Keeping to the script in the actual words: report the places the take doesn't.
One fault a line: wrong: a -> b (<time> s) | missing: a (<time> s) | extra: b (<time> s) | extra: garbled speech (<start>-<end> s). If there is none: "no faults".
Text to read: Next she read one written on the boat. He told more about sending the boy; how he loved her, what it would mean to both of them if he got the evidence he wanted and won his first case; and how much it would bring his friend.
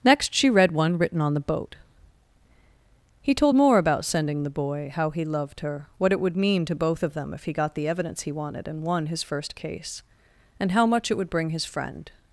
no faults